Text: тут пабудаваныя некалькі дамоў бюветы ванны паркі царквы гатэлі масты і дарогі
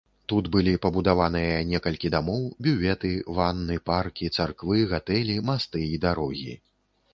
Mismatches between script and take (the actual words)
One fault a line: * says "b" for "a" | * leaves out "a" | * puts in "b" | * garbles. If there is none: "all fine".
* puts in "былі"